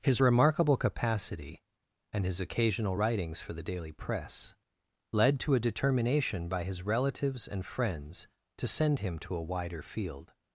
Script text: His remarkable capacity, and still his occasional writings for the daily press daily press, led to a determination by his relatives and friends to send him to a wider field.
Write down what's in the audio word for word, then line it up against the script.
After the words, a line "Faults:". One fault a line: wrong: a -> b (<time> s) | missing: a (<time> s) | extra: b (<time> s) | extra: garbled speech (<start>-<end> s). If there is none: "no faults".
His remarkable capacity, and his occasional writings for the daily press, led to a determination by his relatives and friends to send him to a wider field.
Faults:
missing: still (2.2 s)
missing: daily press (4.5 s)